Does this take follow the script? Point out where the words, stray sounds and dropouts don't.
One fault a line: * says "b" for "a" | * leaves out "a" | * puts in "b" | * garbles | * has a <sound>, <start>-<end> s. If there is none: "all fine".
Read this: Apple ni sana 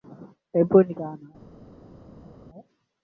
all fine